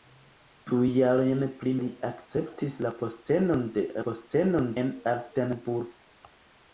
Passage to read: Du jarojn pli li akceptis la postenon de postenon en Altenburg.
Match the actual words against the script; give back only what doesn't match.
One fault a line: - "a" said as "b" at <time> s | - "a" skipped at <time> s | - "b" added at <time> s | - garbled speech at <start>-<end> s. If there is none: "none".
none